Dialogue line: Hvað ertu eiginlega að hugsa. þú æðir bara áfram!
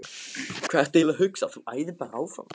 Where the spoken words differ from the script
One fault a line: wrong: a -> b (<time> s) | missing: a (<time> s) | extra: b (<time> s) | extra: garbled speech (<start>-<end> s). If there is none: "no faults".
no faults